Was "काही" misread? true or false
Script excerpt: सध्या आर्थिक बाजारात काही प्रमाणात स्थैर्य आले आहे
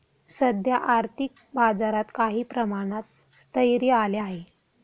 false